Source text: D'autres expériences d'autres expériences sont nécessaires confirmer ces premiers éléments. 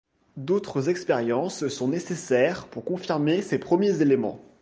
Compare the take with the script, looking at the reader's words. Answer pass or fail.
fail